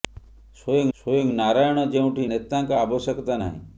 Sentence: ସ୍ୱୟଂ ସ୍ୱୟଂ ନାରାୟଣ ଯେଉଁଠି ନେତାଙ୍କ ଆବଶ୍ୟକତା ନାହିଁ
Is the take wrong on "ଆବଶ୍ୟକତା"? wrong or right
right